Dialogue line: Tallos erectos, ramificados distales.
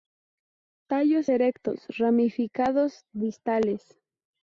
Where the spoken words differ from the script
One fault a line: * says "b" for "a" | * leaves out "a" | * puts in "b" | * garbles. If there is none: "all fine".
all fine